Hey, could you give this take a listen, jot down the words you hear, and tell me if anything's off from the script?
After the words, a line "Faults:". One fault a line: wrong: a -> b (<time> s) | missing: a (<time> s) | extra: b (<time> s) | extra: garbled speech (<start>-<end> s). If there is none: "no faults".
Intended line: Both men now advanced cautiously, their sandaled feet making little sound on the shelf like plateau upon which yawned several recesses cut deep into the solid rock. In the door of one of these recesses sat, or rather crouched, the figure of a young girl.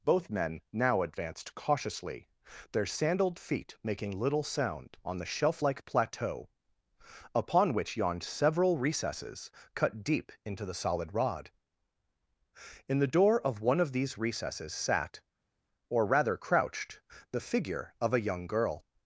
Both men now advanced cautiously, their sandaled feet making little sound on the shelf like plateau upon which yawned several recesses cut deep into the solid rod. In the door of one of these recesses sat, or rather crouched, the figure of a young girl.
Faults:
wrong: rock -> rod (11.1 s)